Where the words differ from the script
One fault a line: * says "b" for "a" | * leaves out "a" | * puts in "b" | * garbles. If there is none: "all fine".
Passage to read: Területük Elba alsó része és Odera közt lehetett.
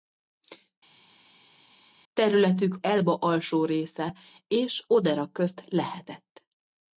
all fine